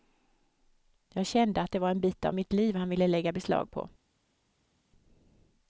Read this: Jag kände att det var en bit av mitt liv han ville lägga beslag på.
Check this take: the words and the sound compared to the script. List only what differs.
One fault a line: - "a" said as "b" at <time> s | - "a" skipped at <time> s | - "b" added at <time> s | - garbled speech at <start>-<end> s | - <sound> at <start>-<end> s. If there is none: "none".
none